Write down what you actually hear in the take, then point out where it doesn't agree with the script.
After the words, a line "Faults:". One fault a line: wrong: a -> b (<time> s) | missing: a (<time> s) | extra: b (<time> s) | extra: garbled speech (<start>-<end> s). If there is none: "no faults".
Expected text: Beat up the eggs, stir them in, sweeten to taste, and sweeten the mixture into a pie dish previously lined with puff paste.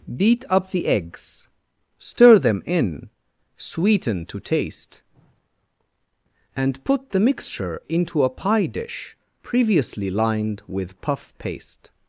Beat up the eggs, stir them in, sweeten to taste, and put the mixture into a pie dish previously lined with puff paste.
Faults:
wrong: sweeten -> put (6.8 s)